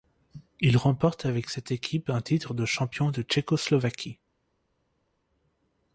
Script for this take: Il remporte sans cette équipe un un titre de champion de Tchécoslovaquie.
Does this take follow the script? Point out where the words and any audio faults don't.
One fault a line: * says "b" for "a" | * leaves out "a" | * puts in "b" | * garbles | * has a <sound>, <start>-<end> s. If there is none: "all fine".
* says "avec" for "sans"
* leaves out "un"